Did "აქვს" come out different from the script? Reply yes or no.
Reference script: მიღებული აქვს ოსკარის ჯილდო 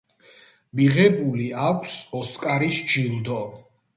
no